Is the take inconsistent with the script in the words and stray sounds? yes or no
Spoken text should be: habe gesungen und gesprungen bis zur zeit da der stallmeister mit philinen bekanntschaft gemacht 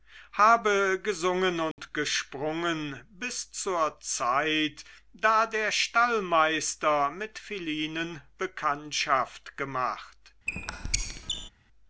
yes